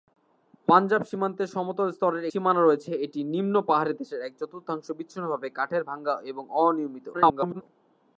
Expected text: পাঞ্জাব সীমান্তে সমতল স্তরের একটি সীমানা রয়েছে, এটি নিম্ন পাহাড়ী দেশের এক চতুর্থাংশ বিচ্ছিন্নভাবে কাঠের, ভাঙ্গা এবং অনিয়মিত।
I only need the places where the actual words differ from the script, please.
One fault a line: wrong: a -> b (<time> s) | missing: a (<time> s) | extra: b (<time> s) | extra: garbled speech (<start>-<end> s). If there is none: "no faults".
missing: একটি (2.2 s)
extra: garbled speech (7.1-7.6 s)